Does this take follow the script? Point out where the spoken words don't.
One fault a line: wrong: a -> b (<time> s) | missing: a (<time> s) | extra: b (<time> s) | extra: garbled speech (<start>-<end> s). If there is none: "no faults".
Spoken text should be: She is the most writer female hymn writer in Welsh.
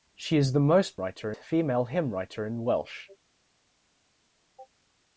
no faults